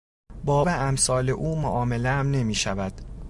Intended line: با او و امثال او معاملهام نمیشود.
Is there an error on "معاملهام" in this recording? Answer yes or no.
no